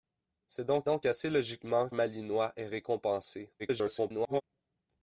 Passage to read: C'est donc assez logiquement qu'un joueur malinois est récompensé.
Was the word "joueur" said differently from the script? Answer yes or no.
yes